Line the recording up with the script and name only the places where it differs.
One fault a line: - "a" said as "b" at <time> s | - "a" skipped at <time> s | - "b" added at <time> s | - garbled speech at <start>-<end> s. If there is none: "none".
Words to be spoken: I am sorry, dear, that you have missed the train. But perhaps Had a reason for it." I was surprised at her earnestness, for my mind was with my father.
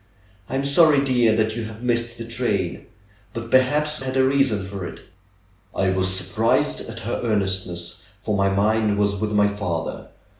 none